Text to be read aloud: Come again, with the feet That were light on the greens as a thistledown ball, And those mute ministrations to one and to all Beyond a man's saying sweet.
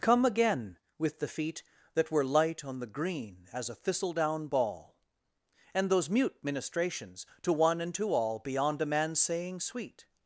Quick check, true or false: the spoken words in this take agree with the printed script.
false